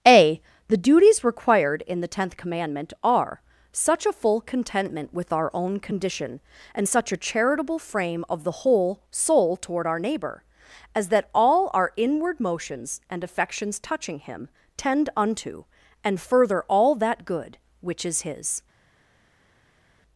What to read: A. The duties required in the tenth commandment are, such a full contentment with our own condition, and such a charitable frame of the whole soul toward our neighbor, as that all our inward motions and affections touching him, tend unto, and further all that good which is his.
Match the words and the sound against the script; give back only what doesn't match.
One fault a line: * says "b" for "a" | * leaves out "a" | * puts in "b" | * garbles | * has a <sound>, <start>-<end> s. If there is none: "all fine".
all fine